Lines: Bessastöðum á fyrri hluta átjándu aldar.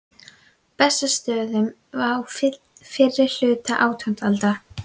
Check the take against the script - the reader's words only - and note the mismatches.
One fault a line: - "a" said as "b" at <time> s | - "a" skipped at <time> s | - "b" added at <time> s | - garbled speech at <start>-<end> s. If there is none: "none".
none